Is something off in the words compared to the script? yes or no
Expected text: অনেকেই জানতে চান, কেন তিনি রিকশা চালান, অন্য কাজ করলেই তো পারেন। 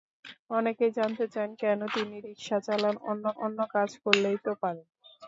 yes